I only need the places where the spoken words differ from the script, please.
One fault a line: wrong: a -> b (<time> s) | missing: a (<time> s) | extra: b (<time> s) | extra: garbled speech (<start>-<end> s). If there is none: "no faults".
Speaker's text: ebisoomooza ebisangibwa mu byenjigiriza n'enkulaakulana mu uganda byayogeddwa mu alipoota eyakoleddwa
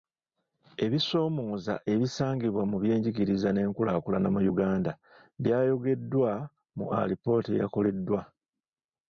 no faults